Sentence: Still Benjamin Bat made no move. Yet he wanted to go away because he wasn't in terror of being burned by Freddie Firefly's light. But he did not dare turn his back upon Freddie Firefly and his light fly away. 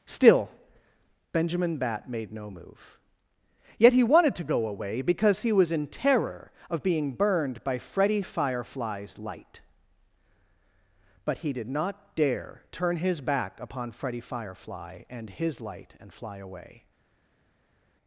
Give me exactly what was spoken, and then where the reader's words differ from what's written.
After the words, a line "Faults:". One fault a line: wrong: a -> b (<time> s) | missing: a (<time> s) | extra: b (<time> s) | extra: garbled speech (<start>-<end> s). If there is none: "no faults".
Still Benjamin Bat made no move. Yet he wanted to go away because he was in terror of being burned by Freddie Firefly's light. But he did not dare turn his back upon Freddie Firefly and his light and fly away.
Faults:
wrong: wasn't -> was (5.5 s)
extra: and (16.0 s)